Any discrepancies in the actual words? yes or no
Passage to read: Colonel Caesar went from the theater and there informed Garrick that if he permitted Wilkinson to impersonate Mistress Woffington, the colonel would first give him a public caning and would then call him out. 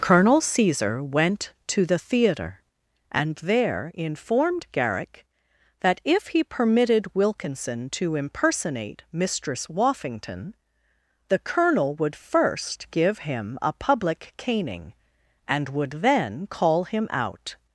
yes